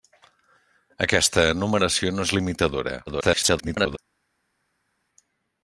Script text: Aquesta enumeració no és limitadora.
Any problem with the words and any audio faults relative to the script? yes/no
yes